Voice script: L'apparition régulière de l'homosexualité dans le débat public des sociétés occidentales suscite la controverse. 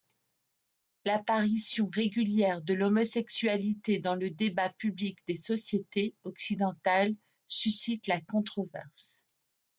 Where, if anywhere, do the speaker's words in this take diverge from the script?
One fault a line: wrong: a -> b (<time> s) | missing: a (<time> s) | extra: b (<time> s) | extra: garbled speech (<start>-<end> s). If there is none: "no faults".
no faults